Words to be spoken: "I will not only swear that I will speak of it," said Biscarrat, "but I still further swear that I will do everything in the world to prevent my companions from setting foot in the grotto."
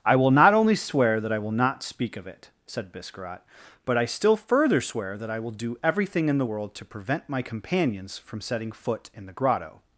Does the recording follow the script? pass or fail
fail